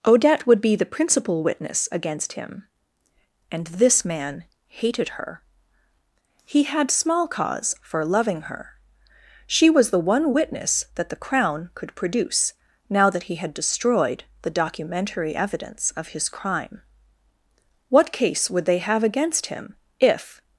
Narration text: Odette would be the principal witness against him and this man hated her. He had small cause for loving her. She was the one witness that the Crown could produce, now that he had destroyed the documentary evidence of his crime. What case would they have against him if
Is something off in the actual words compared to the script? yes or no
no